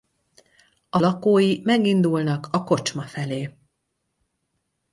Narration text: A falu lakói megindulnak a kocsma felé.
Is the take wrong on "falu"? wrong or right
wrong